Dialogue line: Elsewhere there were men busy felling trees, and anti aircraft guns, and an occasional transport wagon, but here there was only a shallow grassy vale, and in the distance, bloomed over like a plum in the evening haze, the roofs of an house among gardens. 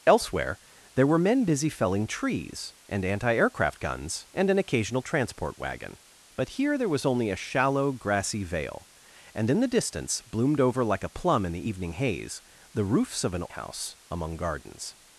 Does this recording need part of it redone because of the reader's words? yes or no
no